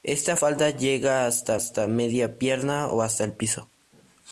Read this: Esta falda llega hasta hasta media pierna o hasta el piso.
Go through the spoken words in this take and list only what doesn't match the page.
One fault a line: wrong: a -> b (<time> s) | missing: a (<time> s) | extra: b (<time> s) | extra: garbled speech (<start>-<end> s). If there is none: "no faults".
no faults